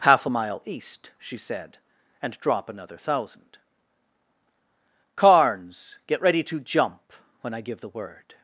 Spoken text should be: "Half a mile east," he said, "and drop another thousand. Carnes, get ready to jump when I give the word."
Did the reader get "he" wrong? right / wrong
wrong